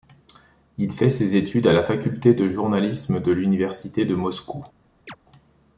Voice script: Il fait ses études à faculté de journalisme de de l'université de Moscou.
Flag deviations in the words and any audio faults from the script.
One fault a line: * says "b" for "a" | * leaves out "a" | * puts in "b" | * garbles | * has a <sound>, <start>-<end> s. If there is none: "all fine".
* puts in "la"
* leaves out "de"
* has a chirp, 5.1-5.2 s